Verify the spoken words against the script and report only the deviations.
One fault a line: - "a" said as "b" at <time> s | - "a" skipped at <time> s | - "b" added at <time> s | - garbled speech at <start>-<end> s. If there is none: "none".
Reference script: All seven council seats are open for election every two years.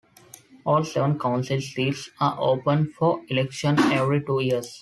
none